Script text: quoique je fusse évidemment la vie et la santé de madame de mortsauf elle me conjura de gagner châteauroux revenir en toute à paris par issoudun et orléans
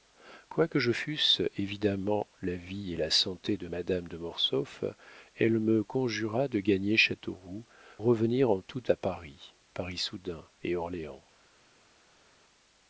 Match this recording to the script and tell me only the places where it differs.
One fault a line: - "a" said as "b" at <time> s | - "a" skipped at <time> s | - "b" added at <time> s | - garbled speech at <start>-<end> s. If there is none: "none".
none